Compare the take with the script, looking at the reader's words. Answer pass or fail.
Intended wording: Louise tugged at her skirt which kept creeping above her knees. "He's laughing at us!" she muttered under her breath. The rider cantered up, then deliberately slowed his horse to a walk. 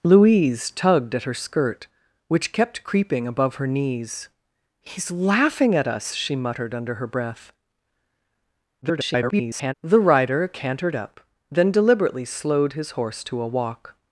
fail